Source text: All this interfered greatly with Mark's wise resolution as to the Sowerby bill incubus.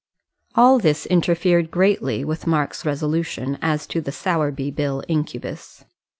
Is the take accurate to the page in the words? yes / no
no